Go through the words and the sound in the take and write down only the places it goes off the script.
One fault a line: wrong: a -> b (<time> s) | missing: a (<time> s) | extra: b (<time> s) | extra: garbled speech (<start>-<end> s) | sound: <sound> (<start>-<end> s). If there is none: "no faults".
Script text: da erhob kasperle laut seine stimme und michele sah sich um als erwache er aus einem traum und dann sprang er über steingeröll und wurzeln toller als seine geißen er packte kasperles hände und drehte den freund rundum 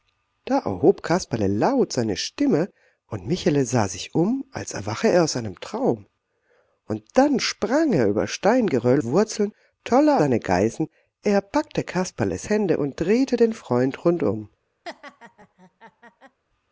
missing: und (9.0 s)
missing: als (10.2 s)
sound: laugh (14.8-16.4 s)